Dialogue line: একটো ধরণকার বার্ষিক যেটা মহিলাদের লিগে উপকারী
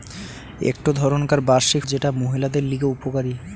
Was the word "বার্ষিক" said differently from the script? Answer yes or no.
no